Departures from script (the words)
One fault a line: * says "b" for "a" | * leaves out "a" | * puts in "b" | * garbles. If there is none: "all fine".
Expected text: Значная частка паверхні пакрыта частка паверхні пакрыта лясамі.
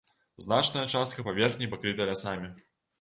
* leaves out "частка паверхні пакрыта"